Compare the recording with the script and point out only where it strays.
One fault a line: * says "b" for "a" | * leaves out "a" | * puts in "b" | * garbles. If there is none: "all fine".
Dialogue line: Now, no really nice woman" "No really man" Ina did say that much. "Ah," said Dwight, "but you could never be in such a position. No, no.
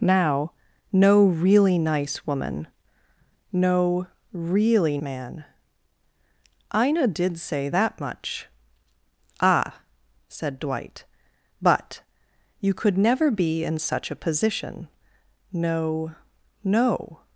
all fine